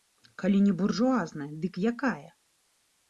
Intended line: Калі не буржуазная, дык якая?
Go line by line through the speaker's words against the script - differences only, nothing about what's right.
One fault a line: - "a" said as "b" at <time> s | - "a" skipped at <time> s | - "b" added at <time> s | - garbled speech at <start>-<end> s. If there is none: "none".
none